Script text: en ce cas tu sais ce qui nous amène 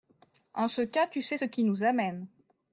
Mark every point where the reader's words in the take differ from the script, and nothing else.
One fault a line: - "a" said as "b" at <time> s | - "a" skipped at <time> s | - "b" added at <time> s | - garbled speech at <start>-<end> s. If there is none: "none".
none